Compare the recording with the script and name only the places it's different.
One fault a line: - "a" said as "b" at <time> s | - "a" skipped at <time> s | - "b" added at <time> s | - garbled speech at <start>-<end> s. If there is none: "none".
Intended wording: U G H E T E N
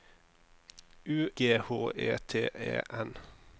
none